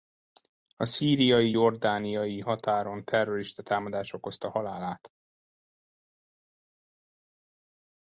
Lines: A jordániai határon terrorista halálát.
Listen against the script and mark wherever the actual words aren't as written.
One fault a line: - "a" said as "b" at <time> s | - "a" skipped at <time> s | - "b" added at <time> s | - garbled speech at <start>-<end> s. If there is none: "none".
- "szíriai" added at 0.8 s
- "támadás okozta" added at 3.6 s